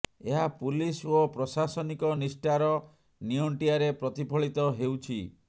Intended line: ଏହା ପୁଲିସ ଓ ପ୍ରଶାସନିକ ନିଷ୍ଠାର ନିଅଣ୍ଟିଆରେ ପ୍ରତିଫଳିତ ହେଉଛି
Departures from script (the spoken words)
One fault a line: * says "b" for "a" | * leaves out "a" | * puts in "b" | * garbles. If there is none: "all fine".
all fine